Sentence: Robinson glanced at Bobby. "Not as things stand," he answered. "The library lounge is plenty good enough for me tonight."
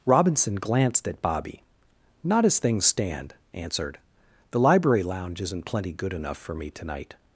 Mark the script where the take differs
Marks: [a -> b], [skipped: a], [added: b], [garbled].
Robinson glanced at Bobby. "Not as things stand," [skipped: he] answered. "The library lounge [is -> isn't] plenty good enough for me tonight."